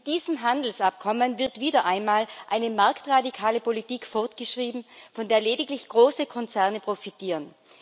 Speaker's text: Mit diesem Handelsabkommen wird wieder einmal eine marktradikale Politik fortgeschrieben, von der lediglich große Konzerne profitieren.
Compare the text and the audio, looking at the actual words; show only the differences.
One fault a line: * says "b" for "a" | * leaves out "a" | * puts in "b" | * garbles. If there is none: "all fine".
all fine